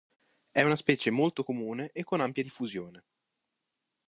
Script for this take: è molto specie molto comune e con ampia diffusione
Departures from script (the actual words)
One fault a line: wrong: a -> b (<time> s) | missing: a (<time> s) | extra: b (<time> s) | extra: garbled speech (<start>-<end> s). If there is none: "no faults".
wrong: molto -> una (0.6 s)